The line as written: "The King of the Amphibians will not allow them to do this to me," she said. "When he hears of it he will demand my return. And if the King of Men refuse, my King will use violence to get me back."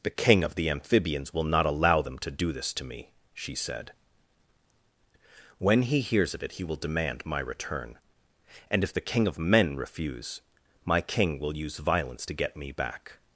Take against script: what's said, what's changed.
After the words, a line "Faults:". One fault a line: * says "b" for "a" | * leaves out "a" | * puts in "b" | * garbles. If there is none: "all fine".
"The King of the Amphibians will not allow them to do this to me," she said. "When he hears of it he will demand my return. And if the King of Men refuse, my King will use violence to get me back."
Faults:
all fine